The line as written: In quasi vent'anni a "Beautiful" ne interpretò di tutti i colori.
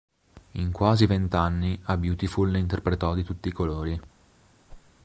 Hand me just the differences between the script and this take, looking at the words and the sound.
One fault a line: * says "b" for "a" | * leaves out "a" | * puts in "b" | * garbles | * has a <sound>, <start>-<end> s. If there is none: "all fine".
* has a whoosh, 4.7-4.9 s